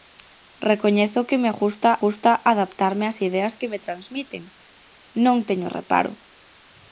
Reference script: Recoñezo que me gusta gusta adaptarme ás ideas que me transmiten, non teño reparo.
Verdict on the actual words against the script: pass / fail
pass